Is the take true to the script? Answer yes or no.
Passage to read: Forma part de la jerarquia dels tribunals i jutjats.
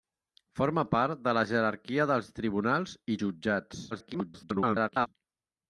no